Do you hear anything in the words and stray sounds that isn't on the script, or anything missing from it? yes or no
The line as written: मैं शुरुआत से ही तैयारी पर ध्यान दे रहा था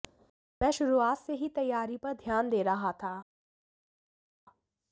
no